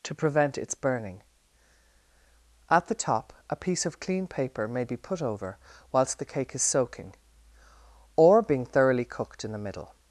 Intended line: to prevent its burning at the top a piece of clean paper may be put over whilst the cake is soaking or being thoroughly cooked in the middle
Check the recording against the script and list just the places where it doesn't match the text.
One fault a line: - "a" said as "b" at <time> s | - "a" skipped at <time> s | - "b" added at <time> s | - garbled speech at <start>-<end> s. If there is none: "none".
none